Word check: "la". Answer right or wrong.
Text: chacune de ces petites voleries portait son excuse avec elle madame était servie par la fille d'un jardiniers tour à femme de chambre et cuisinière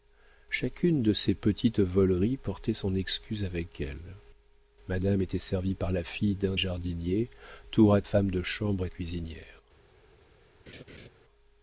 right